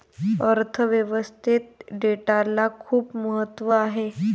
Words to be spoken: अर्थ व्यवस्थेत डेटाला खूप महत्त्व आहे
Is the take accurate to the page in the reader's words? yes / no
yes